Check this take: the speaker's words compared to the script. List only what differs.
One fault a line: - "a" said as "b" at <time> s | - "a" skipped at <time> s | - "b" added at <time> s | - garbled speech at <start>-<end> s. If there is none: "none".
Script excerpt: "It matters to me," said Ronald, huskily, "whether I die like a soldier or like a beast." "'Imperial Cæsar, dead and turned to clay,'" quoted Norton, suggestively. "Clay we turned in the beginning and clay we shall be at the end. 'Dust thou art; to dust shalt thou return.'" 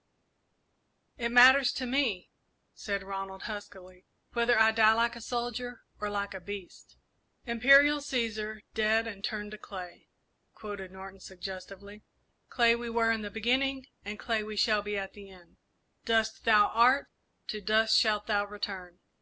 - "turned" said as "were" at 12.9 s